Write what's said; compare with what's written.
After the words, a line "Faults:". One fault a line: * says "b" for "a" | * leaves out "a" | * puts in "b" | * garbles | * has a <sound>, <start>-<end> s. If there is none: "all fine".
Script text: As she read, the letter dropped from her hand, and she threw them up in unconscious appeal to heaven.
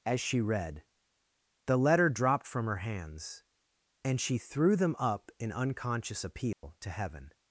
As she read, the letter dropped from her hands, and she threw them up in unconscious appeal to heaven.
Faults:
* says "hands" for "hand"
* has a dropout, 6.5-6.6 s